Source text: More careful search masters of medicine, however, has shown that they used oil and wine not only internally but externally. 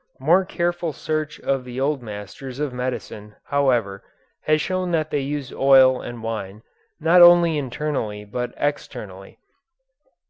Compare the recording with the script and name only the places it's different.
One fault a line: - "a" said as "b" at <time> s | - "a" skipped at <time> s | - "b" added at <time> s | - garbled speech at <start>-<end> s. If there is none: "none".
- "of the old" added at 1.4 s